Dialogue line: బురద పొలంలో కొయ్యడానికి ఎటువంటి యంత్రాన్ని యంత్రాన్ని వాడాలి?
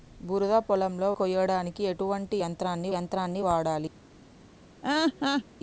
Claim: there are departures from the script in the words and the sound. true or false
true